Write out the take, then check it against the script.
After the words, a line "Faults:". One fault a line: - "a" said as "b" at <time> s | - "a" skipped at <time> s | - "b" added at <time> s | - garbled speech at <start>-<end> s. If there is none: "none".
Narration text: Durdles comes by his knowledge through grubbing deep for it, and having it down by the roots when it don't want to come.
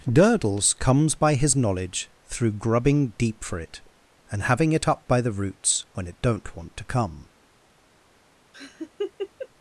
Durdles comes by his knowledge through grubbing deep for it, and having it up by the roots when it don't want to come.
Faults:
- "down" said as "up" at 4.9 s